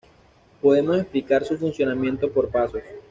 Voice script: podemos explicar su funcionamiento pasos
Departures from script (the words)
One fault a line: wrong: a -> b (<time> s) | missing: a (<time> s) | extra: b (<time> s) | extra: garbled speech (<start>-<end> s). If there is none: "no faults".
extra: por (2.3 s)